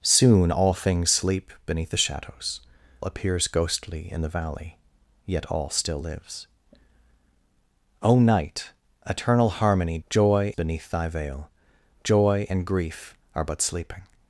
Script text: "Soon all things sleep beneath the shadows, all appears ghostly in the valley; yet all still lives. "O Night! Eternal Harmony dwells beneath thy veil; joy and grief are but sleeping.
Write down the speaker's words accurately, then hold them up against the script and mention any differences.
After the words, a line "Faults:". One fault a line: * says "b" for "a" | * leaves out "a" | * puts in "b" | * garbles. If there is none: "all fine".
"Soon all things sleep beneath the shadows, appears ghostly in the valley; yet all still lives. "O Night! Eternal Harmony joy beneath thy veil; joy and grief are but sleeping.
Faults:
* leaves out "all"
* says "joy" for "dwells"